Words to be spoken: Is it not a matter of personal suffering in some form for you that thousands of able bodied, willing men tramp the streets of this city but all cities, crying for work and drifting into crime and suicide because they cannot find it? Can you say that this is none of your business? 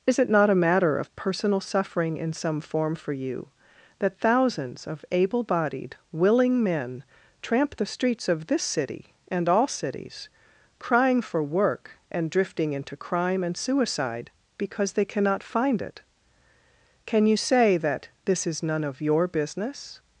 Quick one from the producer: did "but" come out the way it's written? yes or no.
no